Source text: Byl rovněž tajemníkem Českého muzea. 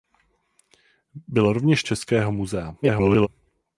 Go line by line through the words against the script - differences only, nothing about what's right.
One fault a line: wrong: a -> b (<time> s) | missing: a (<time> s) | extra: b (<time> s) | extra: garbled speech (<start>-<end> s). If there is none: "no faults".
missing: tajemníkem (1.8 s)
extra: garbled speech (2.8-3.3 s)